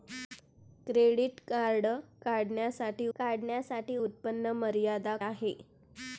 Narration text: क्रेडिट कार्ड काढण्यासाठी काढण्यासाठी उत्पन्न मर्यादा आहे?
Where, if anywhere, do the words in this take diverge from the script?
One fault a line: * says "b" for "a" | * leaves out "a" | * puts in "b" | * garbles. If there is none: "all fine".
all fine